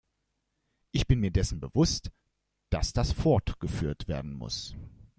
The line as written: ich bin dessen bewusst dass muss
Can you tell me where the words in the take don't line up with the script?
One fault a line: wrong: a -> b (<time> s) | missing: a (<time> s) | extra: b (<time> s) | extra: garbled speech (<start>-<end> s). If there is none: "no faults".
extra: mir (1.2 s)
extra: das fortgeführt werden (2.9 s)